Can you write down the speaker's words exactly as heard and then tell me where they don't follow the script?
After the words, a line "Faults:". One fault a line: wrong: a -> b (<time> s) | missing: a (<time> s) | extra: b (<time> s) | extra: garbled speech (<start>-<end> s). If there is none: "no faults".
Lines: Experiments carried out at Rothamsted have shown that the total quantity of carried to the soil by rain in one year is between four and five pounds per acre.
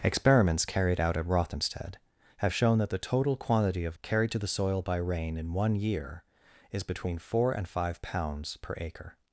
Experiments carried out at Rothamsted have shown that the total quantity of carried to the soil by rain in one year is between four and five pounds per acre.
Faults:
no faults